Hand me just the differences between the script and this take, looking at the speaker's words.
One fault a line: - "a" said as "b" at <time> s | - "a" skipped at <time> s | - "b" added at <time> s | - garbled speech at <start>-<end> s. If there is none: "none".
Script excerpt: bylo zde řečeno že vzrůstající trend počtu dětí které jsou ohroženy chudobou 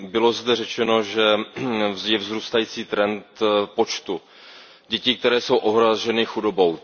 - "je" added at 2.0 s